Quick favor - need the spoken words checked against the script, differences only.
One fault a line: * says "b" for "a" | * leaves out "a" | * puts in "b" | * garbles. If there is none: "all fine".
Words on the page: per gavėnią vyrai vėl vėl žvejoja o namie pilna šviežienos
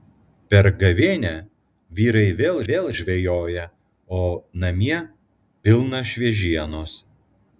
all fine